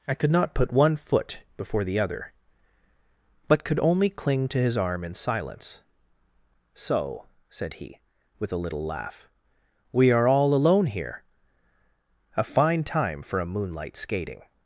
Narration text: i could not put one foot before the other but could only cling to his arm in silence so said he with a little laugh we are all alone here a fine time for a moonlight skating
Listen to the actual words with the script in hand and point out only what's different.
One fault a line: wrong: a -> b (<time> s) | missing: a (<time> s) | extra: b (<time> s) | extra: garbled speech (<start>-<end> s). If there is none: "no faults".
no faults